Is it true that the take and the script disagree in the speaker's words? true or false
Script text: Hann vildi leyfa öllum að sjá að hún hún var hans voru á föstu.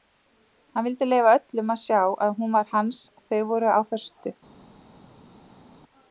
true